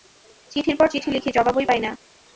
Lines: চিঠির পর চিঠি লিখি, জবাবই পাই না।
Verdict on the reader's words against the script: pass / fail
pass